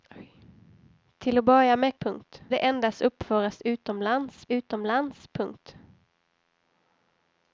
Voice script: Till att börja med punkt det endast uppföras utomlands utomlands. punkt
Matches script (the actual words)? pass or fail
pass